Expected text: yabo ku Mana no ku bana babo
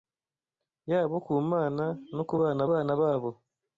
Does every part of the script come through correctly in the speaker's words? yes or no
no